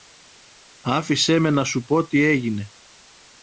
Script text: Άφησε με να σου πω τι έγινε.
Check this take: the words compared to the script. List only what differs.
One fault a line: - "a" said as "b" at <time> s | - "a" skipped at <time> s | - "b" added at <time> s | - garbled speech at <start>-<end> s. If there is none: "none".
none